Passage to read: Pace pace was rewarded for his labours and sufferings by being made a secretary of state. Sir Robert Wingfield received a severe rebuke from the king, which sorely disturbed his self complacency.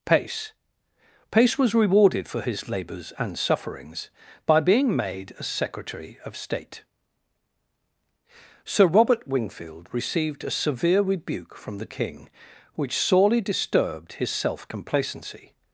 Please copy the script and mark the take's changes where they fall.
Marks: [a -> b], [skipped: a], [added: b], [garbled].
Pace pace was rewarded for his labours and sufferings by being made a secretary of state. Sir Robert Wingfield received a severe rebuke from the king, which sorely disturbed his self complacency.